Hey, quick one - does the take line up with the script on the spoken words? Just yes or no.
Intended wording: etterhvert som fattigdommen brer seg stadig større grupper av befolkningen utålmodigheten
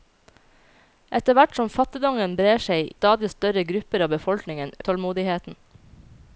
yes